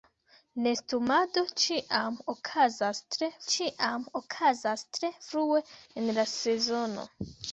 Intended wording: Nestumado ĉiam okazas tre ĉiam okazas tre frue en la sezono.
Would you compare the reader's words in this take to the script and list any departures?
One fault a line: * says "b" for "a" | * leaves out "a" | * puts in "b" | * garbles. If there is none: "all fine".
all fine